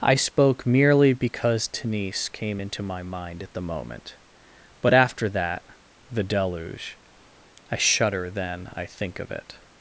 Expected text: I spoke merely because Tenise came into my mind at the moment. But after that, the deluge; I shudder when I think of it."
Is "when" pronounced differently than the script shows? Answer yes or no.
yes